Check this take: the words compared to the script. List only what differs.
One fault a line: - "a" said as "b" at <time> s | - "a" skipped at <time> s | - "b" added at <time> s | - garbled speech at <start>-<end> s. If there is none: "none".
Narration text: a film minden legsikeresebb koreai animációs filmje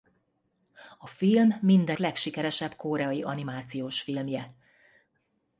none